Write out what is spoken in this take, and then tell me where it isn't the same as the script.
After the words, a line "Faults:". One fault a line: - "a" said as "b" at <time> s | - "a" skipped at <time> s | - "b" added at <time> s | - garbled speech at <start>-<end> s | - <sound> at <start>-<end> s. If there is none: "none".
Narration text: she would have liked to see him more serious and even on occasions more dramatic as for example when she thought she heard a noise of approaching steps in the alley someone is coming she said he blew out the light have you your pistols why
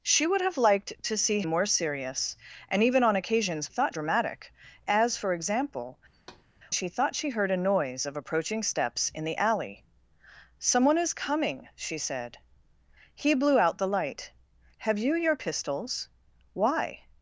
she would have liked to see more serious and even on occasions thought dramatic as for example she thought she heard a noise of approaching steps in the alley someone is coming she said he blew out the light have you your pistols why
Faults:
- "him" skipped at 1.4 s
- "more" said as "thought" at 3.7 s
- "when" skipped at 6.0 s
- thud at 6.1-6.5 s